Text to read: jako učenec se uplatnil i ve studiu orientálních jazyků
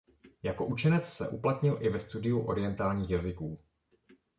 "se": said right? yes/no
yes